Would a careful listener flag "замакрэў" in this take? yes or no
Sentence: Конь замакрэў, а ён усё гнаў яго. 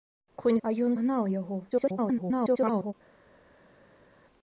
yes